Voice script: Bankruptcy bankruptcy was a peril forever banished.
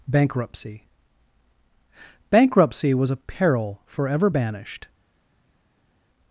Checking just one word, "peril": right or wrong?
right